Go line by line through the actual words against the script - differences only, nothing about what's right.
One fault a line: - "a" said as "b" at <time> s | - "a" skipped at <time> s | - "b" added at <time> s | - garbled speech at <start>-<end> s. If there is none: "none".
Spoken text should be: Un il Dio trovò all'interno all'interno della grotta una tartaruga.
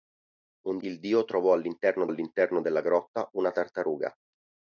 none